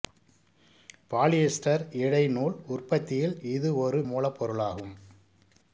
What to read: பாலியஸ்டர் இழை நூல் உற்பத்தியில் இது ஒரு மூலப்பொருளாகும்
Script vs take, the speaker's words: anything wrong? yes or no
no